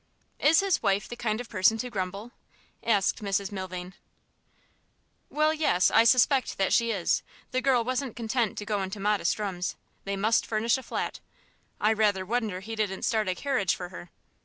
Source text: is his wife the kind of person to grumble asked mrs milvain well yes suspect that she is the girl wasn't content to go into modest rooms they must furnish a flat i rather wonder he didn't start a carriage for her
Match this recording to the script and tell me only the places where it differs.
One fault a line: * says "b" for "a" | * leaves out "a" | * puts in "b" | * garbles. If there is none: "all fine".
* puts in "i"